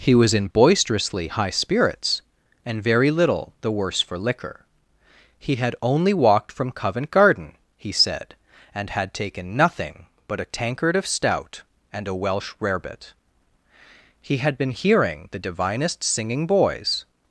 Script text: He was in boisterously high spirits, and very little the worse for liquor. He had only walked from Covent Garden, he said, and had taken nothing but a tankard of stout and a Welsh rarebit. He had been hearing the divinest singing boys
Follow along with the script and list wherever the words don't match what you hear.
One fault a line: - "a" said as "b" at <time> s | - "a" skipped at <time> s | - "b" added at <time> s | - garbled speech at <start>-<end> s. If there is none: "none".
none